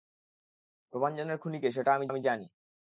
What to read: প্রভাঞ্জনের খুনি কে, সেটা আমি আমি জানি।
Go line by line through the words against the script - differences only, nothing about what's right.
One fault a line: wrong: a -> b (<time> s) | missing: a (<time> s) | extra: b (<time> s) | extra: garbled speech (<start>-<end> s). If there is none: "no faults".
no faults